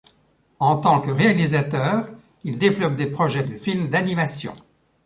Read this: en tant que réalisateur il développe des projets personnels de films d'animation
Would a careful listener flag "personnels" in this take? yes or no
yes